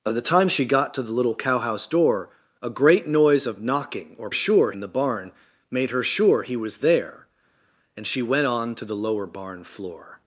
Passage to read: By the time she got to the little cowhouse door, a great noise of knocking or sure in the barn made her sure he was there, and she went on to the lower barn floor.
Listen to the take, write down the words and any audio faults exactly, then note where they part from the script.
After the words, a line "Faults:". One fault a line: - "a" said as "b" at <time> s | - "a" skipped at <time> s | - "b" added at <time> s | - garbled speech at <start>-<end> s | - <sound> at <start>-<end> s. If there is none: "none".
By the time she got to the little cowhouse door, a great noise of knocking or sure in the barn made her sure he was there, and she went on to the lower barn floor.
Faults:
none